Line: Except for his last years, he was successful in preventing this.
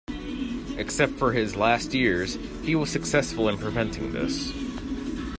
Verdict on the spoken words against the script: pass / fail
pass